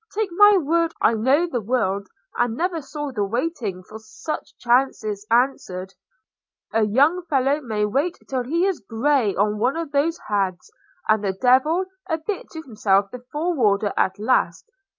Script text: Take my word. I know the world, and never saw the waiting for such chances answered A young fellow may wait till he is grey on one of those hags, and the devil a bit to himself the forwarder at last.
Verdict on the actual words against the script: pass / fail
pass